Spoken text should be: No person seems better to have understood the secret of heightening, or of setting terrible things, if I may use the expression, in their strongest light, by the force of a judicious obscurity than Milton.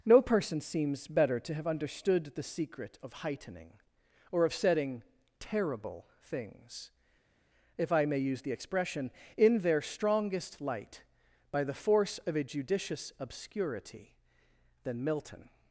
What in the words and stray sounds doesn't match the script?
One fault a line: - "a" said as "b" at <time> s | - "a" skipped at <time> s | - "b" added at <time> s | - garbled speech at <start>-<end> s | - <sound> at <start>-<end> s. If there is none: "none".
none